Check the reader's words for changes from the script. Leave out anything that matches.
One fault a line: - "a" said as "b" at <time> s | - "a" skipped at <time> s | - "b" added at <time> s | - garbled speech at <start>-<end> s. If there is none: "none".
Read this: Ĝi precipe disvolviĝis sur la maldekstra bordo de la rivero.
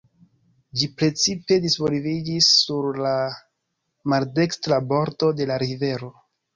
none